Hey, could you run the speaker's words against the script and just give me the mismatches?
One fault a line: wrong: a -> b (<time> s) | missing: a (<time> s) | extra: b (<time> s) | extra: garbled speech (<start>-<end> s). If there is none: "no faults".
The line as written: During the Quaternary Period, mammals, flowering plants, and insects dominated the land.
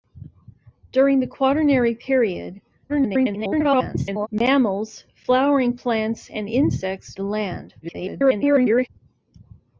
extra: garbled speech (2.9-4.3 s)
missing: dominated (7.1 s)
extra: garbled speech (7.8-8.9 s)